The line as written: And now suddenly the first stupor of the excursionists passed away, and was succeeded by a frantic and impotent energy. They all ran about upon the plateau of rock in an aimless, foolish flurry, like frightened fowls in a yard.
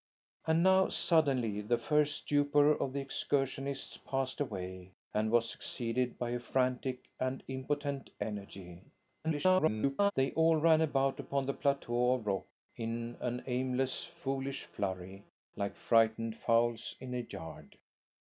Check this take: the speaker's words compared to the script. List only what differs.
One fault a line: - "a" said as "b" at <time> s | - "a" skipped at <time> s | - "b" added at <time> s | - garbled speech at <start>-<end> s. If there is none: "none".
- garbled speech at 9.2-10.1 s